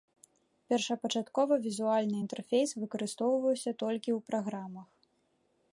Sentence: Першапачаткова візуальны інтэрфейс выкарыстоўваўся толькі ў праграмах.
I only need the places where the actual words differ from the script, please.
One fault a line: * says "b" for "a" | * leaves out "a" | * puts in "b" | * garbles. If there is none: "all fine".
all fine